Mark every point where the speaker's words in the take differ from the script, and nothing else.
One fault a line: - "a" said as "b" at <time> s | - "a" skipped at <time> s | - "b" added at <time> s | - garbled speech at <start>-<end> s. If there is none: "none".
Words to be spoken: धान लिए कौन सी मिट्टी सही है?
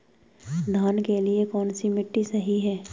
- "के" added at 1.0 s